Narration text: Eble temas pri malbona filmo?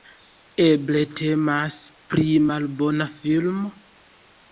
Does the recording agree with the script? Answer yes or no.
yes